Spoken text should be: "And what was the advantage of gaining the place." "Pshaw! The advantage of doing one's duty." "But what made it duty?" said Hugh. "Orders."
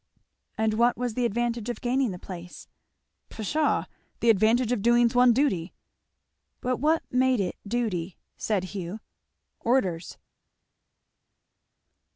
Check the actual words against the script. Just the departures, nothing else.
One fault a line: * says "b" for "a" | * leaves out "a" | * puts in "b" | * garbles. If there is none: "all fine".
all fine